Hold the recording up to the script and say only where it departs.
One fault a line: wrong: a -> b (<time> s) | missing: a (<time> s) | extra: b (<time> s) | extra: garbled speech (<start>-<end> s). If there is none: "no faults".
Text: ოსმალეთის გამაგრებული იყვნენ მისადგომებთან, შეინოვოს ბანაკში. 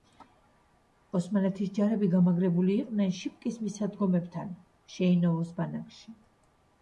extra: ჯარები (1.8 s)
extra: შიპკის (3.2 s)